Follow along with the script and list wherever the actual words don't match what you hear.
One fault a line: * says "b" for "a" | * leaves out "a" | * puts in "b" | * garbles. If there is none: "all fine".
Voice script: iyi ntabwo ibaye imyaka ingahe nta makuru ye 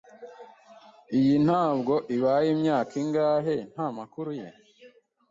all fine